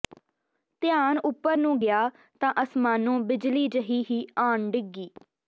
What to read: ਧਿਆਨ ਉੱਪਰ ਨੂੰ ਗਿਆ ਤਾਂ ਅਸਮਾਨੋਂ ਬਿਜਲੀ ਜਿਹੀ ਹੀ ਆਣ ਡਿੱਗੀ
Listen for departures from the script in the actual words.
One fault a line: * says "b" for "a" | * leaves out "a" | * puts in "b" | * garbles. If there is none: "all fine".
all fine